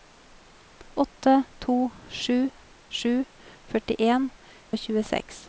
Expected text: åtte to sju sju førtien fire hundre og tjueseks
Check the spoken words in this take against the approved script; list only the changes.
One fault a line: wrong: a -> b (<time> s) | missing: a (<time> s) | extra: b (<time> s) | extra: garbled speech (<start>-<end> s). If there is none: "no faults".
missing: fire hundre (4.3 s)